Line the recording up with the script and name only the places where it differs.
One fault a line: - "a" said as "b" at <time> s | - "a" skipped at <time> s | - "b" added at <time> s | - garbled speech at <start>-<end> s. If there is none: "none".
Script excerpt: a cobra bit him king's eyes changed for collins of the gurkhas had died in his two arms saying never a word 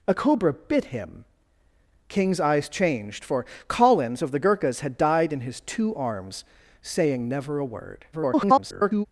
- garbled speech at 8.1-9.1 s